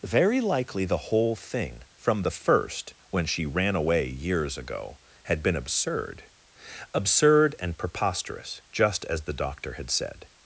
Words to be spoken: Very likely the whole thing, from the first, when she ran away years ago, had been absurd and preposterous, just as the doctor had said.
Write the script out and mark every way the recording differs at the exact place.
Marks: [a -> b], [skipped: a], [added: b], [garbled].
Very likely the whole thing, from the first, when she ran away years ago, had been absurd [added: absurd] and preposterous, just as the doctor had said.